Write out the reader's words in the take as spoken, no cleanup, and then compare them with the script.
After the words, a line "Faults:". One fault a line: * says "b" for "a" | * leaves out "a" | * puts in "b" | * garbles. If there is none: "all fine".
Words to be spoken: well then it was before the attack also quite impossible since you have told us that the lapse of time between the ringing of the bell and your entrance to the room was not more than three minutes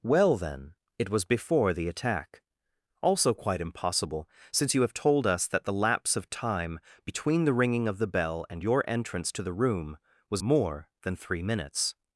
well then it was before the attack also quite impossible since you have told us that the lapse of time between the ringing of the bell and your entrance to the room was more than three minutes
Faults:
* leaves out "not"